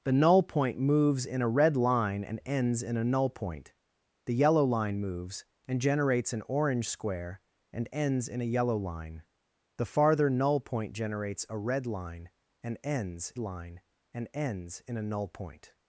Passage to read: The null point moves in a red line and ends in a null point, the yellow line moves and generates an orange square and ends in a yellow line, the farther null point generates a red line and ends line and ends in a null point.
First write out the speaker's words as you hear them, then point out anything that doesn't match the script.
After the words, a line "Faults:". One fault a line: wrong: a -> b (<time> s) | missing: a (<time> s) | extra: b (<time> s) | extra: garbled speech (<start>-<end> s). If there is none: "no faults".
The null point moves in a red line and ends in a null point, the yellow line moves and generates an orange square and ends in a yellow line, the farther null point generates a red line and ends line and ends in a null point.
Faults:
no faults